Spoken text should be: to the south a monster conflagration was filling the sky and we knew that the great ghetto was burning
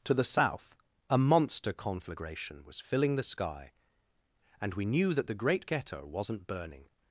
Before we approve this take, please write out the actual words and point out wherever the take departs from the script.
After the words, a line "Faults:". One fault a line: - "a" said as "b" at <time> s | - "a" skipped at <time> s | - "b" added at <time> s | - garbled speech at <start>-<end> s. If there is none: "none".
to the south a monster conflagration was filling the sky and we knew that the great ghetto wasn't burning
Faults:
- "was" said as "wasn't" at 6.0 s